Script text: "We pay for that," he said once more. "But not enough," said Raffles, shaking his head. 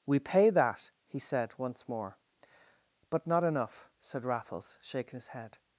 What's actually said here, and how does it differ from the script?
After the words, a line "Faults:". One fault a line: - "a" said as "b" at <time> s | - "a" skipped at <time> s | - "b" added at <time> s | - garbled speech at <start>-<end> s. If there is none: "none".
"We pay that," he said once more. "But not enough," said Raffles, shaking his head.
Faults:
- "for" skipped at 0.5 s